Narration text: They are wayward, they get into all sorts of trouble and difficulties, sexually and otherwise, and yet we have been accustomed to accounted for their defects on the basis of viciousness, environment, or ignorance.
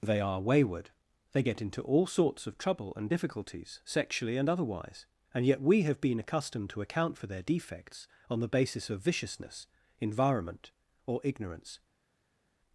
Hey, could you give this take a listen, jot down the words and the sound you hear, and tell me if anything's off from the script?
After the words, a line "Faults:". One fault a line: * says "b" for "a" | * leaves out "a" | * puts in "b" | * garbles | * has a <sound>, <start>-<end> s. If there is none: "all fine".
They are wayward, they get into all sorts of trouble and difficulties, sexually and otherwise, and yet we have been accustomed to account for their defects on the basis of viciousness, environment, or ignorance.
Faults:
* says "account" for "accounted"